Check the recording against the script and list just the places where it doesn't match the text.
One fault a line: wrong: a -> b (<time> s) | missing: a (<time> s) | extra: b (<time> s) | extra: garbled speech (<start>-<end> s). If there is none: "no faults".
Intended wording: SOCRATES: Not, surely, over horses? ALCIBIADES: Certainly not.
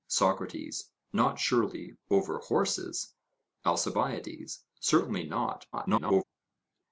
extra: garbled speech (5.7-6.2 s)